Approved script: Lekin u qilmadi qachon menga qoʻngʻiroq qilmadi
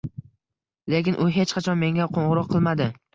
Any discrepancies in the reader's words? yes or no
yes